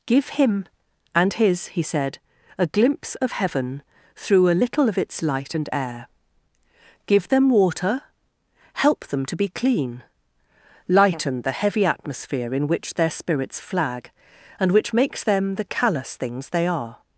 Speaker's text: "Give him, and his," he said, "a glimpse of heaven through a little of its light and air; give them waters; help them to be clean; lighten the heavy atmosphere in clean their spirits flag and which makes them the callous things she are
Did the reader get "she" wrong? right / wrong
wrong